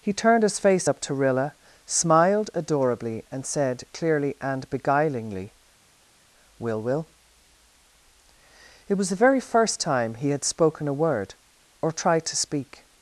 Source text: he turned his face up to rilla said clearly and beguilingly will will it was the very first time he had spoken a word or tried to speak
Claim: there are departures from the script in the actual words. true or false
true